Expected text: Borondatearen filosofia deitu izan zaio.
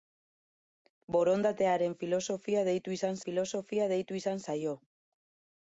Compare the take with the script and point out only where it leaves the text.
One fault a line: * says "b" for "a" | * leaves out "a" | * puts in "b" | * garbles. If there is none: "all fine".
* puts in "filosofia deitu izan"